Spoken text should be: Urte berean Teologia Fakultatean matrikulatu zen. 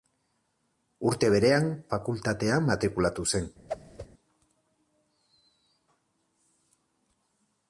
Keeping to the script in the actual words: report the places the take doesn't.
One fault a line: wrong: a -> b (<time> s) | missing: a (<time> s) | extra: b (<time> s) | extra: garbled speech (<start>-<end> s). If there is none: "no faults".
missing: Teologia (1.7 s)